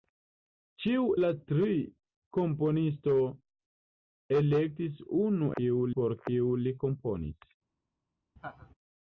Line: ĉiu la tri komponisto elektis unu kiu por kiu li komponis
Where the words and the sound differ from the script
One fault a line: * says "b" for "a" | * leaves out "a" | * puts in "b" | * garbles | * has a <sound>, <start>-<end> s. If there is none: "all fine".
* has a laugh, 8.4-8.7 s